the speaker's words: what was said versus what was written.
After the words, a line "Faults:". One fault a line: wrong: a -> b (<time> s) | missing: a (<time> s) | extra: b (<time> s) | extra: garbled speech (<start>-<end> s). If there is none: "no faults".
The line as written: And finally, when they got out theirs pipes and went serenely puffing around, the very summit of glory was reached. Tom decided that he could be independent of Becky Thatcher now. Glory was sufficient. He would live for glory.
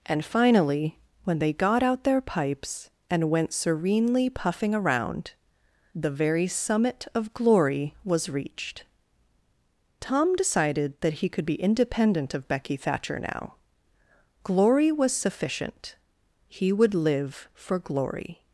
And finally, when they got out their pipes and went serenely puffing around, the very summit of glory was reached. Tom decided that he could be independent of Becky Thatcher now. Glory was sufficient. He would live for glory.
Faults:
wrong: theirs -> their (2.0 s)